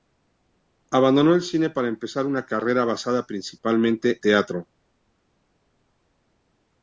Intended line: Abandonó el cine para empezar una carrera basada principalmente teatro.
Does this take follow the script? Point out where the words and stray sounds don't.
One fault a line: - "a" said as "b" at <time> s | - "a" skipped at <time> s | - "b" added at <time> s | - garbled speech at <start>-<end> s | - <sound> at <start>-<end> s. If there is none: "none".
none